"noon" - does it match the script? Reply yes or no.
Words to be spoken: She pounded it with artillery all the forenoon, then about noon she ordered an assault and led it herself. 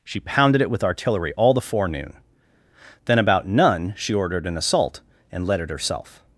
no